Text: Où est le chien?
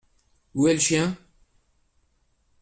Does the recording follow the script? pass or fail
pass